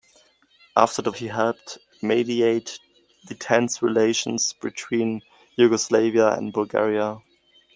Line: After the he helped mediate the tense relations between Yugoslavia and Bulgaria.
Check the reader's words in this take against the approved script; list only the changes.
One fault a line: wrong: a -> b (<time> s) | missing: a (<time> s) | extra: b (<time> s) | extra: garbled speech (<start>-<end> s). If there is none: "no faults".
no faults